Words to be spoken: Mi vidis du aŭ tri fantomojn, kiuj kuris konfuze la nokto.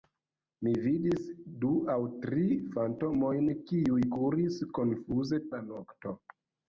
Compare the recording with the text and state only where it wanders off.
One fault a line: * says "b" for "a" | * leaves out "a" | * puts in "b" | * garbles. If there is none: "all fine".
all fine